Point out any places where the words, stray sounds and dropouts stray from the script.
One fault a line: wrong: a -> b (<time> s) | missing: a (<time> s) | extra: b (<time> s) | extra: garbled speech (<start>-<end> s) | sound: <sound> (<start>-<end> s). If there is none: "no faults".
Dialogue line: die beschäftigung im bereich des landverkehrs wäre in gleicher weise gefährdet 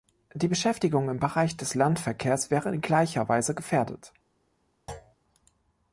sound: thud (4.9-5.2 s)